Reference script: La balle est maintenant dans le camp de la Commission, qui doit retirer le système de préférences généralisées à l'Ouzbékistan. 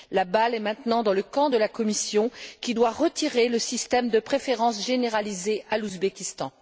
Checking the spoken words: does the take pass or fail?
pass